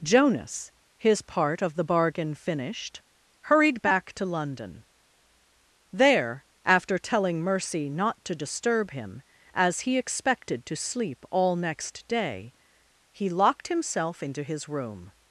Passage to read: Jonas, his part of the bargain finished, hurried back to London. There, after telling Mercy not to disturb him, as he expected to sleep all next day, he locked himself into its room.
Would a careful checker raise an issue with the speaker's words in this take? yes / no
yes